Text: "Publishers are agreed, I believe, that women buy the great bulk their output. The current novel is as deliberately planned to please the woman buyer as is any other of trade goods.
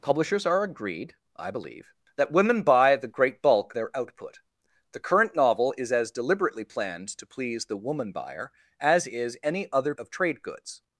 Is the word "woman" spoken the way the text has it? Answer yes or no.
yes